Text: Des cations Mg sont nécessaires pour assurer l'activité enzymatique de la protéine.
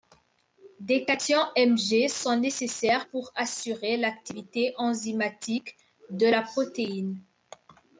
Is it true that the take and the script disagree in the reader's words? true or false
false